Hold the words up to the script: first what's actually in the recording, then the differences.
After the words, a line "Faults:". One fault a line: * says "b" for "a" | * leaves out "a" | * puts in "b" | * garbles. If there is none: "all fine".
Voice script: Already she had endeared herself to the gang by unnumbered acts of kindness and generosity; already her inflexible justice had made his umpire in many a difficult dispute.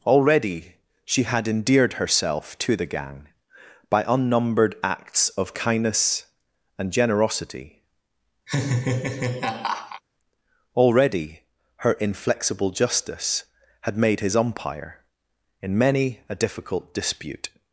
Already she had endeared herself to the gang by unnumbered acts of kindness and generosity; already her inflexible justice had made his umpire in many a difficult dispute.
Faults:
all fine